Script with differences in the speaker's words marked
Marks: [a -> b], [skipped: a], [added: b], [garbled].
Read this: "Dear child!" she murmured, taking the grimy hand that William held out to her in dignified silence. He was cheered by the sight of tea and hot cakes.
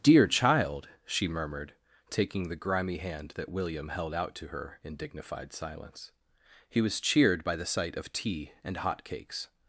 "Dear child!" she murmured, taking the grimy hand that William held out to her in dignified silence. He was cheered by the sight of tea and hot cakes.